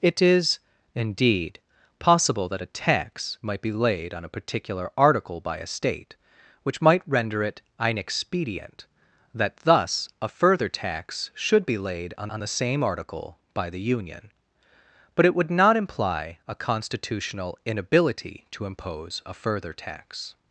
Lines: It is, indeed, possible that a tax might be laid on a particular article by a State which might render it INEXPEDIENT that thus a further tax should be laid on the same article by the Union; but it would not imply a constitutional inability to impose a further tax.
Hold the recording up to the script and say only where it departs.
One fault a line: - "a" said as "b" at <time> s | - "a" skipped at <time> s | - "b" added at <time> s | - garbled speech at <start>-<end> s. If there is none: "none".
- "on" added at 12.3 s